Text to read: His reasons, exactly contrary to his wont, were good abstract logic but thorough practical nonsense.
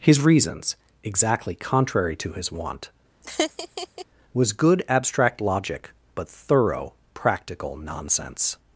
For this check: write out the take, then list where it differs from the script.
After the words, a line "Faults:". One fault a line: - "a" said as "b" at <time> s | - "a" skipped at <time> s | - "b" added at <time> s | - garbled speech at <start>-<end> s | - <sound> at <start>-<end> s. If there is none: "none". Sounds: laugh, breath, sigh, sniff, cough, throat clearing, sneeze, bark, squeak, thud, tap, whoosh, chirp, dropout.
His reasons, exactly contrary to his wont, was good abstract logic but thorough practical nonsense.
Faults:
- laugh at 3.2-4.1 s
- "were" said as "was" at 4.3 s